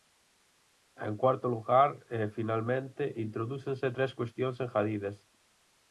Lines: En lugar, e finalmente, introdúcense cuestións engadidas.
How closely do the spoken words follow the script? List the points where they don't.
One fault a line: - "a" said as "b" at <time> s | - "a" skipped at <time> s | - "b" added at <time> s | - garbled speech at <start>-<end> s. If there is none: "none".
- "cuarto" added at 1.2 s
- "tres" added at 3.9 s